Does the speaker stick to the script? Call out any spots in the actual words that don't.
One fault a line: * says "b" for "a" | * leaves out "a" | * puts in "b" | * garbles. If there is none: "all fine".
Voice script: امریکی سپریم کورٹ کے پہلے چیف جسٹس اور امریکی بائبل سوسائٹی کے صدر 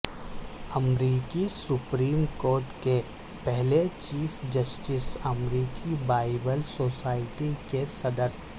* leaves out "اور"